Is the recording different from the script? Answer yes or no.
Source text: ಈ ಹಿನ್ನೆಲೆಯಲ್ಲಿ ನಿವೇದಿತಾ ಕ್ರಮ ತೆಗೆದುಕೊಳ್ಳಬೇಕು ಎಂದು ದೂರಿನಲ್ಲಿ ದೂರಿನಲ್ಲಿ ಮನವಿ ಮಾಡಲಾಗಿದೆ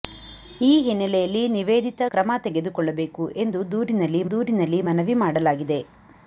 no